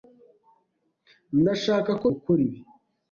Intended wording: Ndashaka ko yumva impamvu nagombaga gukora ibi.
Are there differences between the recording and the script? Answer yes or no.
yes